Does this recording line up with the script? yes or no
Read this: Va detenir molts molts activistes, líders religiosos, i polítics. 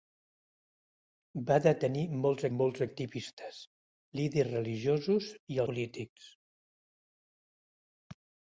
yes